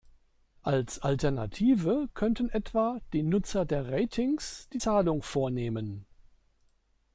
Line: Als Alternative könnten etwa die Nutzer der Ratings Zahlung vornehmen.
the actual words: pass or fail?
fail